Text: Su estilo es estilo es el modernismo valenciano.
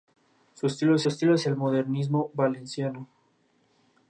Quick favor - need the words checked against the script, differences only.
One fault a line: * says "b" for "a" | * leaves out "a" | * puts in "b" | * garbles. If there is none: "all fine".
all fine